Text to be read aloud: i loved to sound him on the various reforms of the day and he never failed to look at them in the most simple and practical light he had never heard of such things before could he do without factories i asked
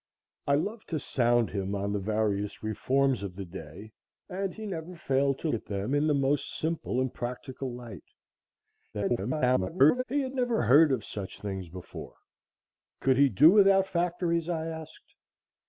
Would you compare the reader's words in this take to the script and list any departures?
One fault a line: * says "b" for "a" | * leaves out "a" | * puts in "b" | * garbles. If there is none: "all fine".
* leaves out "look"
* garbles